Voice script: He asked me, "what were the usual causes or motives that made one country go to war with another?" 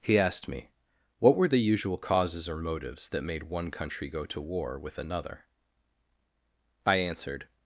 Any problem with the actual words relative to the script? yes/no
yes